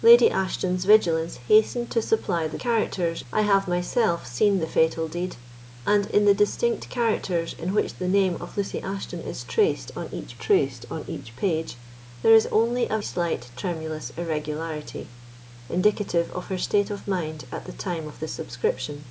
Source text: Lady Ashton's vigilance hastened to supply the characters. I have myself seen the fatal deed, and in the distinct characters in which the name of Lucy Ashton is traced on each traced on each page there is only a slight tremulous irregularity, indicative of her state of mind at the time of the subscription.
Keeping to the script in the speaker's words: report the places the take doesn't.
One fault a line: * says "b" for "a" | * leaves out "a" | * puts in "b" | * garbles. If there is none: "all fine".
all fine